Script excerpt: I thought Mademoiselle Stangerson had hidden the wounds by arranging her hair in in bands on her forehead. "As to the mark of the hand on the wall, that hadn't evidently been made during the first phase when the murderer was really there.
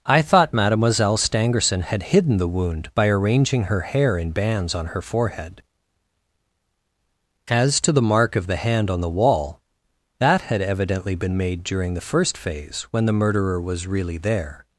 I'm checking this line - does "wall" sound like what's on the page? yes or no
yes